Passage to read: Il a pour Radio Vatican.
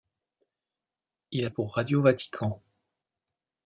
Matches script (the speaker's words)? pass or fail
pass